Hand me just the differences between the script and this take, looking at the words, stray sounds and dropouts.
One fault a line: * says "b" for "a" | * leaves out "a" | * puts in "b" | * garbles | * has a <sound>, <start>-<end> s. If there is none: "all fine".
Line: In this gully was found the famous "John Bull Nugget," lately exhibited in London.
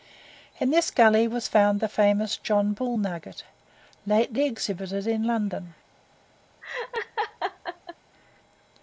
* has a laugh, 6.6-8.0 s